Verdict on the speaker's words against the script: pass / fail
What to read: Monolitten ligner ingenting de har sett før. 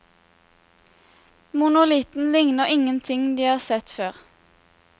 pass